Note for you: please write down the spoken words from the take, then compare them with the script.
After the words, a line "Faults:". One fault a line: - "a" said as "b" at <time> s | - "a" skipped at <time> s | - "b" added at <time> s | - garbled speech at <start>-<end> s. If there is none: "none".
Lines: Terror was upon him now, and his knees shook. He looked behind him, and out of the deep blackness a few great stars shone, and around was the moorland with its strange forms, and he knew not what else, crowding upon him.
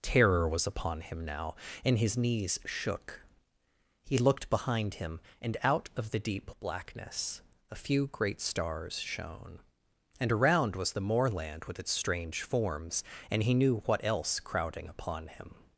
Terror was upon him now, and his knees shook. He looked behind him, and out of the deep blackness a few great stars shone, and around was the moorland with its strange forms, and he knew what else, crowding upon him.
Faults:
- "not" skipped at 13.8 s